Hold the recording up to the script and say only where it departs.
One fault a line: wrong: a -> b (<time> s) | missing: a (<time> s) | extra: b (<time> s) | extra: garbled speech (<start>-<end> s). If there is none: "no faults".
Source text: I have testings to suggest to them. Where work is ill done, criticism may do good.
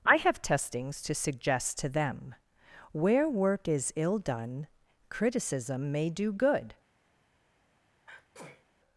no faults